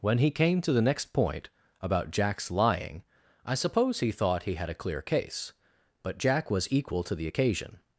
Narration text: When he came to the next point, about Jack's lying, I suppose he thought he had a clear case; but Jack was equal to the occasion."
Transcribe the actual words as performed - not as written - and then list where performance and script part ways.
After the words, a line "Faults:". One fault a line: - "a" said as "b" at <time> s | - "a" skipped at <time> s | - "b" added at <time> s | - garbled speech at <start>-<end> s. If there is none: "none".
When he came to the next point, about Jack's lying, I suppose he thought he had a clear case; but Jack was equal to the occasion."
Faults:
none